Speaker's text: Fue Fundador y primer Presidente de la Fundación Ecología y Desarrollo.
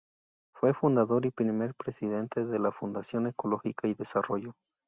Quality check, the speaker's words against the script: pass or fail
pass